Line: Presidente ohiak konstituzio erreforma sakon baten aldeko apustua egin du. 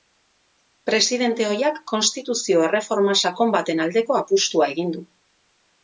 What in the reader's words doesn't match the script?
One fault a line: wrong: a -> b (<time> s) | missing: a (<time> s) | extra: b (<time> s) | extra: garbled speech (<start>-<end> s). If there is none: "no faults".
no faults